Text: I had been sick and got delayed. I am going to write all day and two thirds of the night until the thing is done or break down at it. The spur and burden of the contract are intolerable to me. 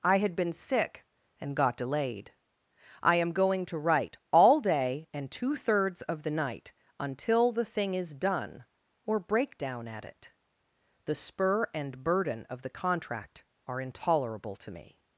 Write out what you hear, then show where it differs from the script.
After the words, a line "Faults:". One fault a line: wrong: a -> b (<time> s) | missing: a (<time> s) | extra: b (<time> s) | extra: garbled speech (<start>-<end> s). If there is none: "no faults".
I had been sick and got delayed. I am going to write all day and two thirds of the night until the thing is done or break down at it. The spur and burden of the contract are intolerable to me.
Faults:
no faults